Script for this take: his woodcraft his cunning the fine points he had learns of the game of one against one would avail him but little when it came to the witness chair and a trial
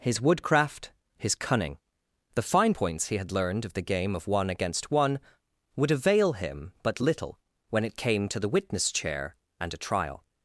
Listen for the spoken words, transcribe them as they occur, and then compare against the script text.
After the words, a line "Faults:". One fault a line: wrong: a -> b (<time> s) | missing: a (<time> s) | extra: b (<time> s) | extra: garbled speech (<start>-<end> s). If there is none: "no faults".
his woodcraft his cunning the fine points he had learned of the game of one against one would avail him but little when it came to the witness chair and a trial
Faults:
wrong: learns -> learned (3.3 s)